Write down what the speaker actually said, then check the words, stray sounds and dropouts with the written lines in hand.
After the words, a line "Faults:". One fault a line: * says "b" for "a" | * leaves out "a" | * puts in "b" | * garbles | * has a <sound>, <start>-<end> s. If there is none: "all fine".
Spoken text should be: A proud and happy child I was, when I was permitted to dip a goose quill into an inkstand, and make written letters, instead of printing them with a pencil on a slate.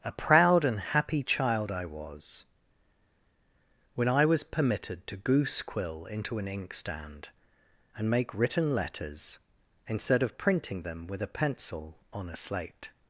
A proud and happy child I was, when I was permitted to goose quill into an inkstand, and make written letters, instead of printing them with a pencil on a slate.
Faults:
* leaves out "dip a"